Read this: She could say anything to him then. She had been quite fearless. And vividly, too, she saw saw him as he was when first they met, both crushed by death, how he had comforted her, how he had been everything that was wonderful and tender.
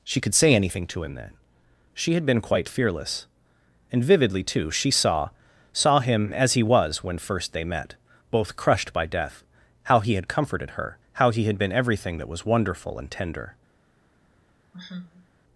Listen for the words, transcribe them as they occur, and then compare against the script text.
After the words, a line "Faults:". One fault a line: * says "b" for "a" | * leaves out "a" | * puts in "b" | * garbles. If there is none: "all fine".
She could say anything to him then. She had been quite fearless. And vividly, too, she saw saw him as he was when first they met, both crushed by death, how he had comforted her, how he had been everything that was wonderful and tender.
Faults:
all fine